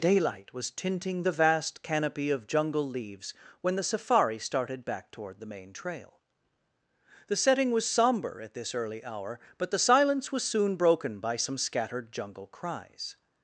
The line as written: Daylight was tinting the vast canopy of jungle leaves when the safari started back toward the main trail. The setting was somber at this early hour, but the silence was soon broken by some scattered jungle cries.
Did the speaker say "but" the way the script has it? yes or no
yes